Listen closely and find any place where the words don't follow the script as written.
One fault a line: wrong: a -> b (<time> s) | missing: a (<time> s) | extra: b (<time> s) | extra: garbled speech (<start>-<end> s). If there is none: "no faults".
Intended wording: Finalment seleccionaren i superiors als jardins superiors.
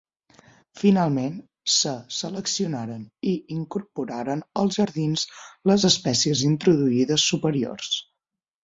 extra: se (1.7 s)
wrong: superiors -> incorporaren (3.6 s)
extra: les espècies introduïdes (5.7 s)